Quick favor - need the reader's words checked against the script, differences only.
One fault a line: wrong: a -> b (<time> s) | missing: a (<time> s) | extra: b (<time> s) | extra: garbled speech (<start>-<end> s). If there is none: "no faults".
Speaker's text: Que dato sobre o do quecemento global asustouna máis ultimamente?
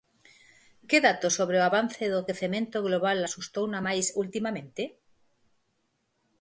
extra: avance (1.7 s)